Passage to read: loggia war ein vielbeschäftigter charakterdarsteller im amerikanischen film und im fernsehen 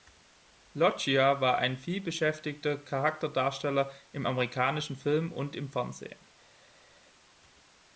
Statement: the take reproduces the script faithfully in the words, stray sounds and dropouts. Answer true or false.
true